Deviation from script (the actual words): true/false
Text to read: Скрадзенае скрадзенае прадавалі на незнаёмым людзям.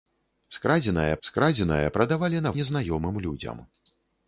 false